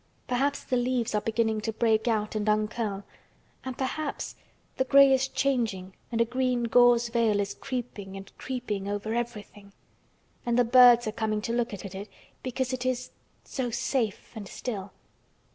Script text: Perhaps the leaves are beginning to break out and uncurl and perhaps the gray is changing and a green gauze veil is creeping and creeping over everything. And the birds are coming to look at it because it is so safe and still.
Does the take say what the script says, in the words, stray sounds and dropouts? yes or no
no